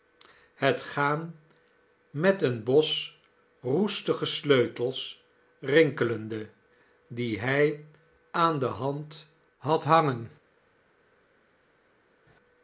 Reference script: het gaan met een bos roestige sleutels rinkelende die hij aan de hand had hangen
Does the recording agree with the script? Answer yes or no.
yes